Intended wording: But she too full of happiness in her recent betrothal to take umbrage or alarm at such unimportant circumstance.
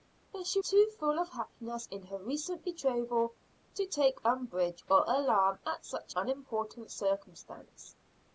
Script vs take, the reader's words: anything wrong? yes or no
no